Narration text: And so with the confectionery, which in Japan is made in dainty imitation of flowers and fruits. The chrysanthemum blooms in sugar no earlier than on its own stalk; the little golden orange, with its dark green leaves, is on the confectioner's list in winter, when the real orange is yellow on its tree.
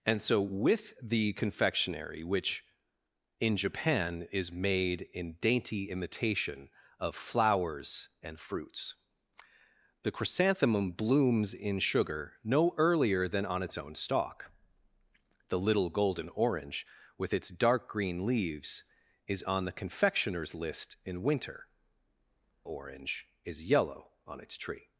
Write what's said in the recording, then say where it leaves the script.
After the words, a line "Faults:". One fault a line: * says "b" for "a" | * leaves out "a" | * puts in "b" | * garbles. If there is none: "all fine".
And so with the confectionery, which in Japan is made in dainty imitation of flowers and fruits. The chrysanthemum blooms in sugar no earlier than on its own stalk; the little golden orange, with its dark green leaves, is on the confectioner's list in winter, orange is yellow on its tree.
Faults:
* leaves out "when the real"